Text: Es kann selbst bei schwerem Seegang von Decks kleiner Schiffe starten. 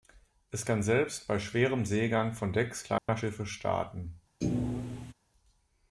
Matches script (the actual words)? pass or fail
pass